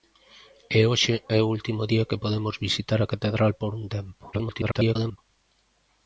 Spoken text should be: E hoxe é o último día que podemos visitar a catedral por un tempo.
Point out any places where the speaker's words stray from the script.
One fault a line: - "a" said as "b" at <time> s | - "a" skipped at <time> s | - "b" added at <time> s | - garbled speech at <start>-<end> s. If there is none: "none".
- garbled speech at 4.3-5.2 s